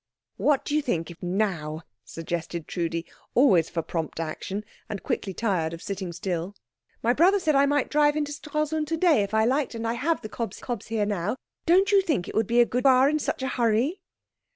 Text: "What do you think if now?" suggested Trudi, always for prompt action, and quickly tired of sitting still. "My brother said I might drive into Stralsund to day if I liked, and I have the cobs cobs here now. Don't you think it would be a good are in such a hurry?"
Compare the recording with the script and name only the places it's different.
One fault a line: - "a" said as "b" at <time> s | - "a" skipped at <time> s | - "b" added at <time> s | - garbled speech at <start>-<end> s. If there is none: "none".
none